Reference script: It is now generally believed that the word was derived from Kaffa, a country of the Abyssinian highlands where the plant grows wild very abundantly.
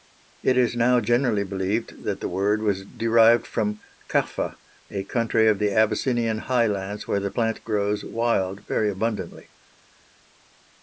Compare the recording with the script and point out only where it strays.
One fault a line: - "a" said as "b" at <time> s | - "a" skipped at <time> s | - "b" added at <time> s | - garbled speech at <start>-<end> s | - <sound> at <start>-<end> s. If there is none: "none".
none